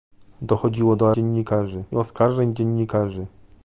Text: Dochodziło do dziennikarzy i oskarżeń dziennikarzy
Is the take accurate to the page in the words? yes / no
yes